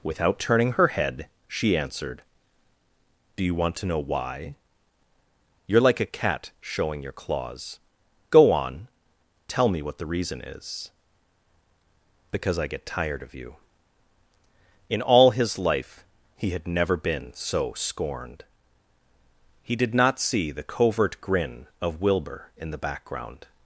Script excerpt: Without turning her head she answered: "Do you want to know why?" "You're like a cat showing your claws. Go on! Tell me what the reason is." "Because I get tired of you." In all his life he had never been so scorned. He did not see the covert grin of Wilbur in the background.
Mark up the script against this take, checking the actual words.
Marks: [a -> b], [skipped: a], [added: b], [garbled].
Without turning her head she answered: "Do you want to know why?" "You're like a cat showing your claws. Go on! Tell me what the reason is." "Because I get tired of you." In all his life he had never been so scorned. He did not see the covert grin of Wilbur in the background.